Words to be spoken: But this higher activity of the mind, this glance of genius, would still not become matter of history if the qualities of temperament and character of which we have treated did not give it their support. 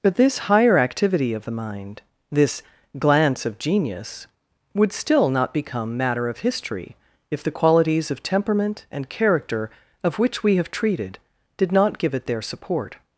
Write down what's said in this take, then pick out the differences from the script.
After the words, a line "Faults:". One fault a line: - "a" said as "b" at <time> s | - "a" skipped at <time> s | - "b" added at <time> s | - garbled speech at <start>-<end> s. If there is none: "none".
But this higher activity of the mind, this glance of genius, would still not become matter of history if the qualities of temperament and character of which we have treated did not give it their support.
Faults:
none